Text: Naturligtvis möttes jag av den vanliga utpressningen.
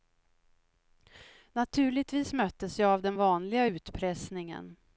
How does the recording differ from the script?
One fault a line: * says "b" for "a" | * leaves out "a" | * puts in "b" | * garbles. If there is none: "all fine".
all fine